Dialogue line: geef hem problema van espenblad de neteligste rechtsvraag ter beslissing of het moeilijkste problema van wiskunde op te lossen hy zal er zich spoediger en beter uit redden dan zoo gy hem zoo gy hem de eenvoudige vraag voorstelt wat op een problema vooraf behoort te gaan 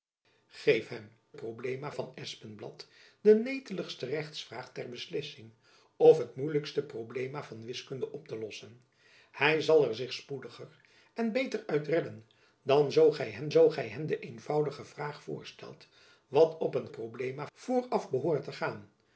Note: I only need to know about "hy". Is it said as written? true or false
true